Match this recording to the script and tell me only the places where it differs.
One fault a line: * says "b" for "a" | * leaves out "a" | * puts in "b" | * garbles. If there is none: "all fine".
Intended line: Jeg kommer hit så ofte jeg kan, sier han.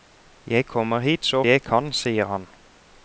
* leaves out "ofte"